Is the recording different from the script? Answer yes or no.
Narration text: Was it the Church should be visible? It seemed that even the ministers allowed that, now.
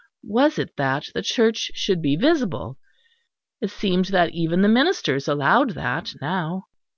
yes